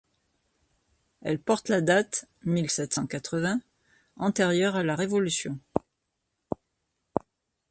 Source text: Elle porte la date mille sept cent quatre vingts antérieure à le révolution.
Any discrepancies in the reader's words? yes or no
yes